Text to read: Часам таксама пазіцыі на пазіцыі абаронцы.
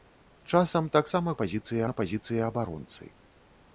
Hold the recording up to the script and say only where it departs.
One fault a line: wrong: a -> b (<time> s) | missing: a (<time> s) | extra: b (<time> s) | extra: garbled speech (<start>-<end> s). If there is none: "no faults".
no faults